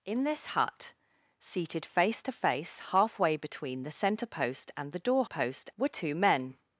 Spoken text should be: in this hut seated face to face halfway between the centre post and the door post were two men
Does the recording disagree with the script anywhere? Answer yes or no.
no